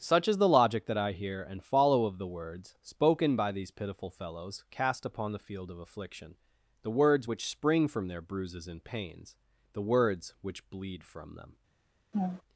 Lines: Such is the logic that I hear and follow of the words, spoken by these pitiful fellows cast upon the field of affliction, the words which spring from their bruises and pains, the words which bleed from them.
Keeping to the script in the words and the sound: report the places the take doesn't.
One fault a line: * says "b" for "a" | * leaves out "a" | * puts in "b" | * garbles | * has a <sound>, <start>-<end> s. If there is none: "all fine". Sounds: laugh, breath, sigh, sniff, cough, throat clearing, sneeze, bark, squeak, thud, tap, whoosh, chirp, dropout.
* has a laugh, 12.1-12.4 s